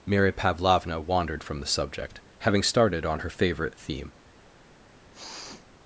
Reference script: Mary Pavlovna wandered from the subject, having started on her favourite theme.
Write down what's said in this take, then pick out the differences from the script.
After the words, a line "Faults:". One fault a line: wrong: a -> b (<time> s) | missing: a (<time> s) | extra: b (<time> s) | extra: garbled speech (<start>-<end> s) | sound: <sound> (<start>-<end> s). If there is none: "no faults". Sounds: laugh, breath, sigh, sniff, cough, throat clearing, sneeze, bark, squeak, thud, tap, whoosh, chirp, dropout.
Mary Pavlovna wandered from the subject, having started on her favourite theme.
Faults:
sound: sniff (5.1-5.7 s)